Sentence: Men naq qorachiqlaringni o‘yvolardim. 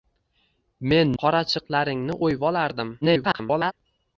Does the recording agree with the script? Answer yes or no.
no